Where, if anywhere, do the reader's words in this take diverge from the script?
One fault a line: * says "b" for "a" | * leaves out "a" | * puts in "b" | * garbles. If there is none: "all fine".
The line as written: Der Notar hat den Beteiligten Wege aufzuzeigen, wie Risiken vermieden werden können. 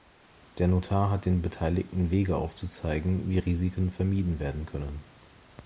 all fine